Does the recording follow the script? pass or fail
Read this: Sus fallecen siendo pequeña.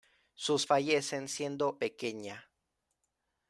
pass